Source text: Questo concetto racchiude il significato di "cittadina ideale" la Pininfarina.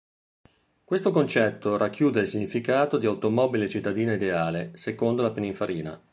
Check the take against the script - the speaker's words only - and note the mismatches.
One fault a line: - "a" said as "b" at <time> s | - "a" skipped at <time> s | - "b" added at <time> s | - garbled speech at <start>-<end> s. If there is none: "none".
- "automobile" added at 3.0 s
- "secondo" added at 4.7 s